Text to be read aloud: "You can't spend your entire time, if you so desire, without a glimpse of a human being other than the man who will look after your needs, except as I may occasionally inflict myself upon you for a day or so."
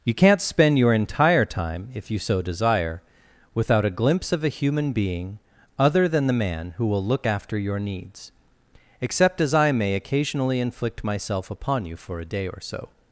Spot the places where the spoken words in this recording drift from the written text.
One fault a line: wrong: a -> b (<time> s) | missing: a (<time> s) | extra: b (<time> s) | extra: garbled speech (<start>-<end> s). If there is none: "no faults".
no faults